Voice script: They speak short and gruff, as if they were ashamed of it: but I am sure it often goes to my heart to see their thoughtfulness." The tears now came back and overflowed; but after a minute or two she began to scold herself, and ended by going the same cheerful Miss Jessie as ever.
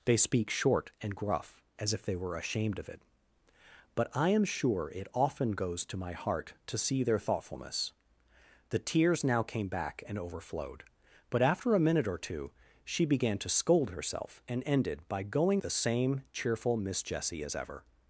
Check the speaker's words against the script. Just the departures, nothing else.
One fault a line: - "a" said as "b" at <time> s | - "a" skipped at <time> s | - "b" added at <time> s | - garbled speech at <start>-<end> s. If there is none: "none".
none